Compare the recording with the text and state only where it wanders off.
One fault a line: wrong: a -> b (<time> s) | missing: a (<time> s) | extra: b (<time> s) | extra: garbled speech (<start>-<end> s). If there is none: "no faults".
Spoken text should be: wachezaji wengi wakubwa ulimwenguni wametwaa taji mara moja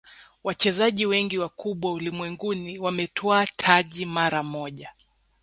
no faults